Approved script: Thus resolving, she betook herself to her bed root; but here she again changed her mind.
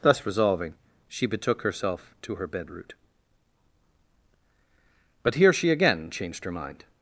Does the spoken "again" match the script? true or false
true